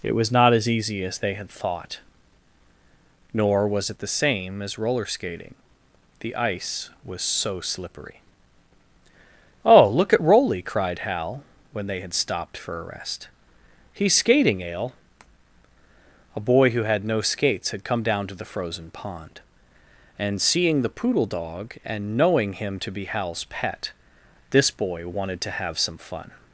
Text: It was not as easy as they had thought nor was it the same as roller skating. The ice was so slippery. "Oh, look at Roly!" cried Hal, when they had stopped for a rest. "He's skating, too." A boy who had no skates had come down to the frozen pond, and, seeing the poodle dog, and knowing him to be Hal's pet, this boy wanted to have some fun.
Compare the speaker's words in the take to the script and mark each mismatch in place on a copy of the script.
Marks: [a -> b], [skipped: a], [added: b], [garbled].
It was not as easy as they had thought nor was it the same as roller skating. The ice was so slippery. "Oh, look at Roly!" cried Hal, when they had stopped for a rest. "He's skating, [too." -> ale] A boy who had no skates had come down to the frozen pond, and, seeing the poodle dog, and knowing him to be Hal's pet, this boy wanted to have some fun.